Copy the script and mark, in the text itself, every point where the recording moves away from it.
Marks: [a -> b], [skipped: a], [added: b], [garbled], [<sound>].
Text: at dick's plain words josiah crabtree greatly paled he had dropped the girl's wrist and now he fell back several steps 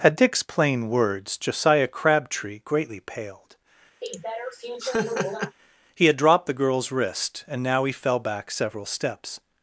at dick's plain words josiah crabtree greatly paled [laugh] he had dropped the girl's wrist and now he fell back several steps